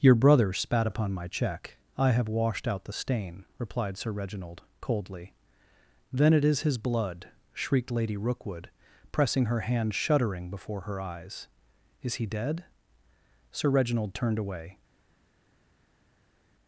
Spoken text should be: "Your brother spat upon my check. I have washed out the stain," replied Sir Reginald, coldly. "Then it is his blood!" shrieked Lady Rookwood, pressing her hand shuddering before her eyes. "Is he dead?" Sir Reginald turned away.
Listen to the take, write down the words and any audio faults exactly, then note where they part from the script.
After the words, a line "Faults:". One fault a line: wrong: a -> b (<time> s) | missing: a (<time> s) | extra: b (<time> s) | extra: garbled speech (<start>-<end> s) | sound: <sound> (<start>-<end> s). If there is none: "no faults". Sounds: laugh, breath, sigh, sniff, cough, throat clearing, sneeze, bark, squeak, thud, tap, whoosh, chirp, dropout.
"Your brother spat upon my check. I have washed out the stain," replied Sir Reginald, coldly. "Then it is his blood!" shrieked Lady Rookwood, pressing her hand shuddering before her eyes. "Is he dead?" Sir Reginald turned away.
Faults:
no faults